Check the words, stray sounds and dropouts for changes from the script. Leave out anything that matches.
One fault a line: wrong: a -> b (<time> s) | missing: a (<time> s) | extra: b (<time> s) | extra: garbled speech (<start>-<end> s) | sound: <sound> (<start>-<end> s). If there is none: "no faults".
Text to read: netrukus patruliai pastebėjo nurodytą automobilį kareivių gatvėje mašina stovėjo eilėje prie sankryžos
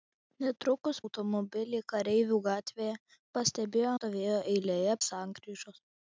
missing: patruliai pastebėjo nurodytą (1.0 s)
wrong: mašina -> pastebėjo (3.4 s)
missing: prie (5.0 s)